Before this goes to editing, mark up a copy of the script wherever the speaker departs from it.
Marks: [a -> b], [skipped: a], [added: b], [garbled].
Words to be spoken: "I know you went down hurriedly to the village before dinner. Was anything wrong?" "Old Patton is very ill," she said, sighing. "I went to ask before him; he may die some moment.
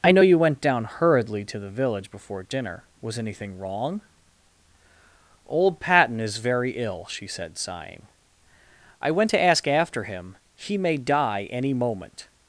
"I know you went down hurriedly to the village before dinner. Was anything wrong?" "Old Patton is very ill," she said, sighing. "I went to ask [before -> after] him; he may die [some -> any] moment.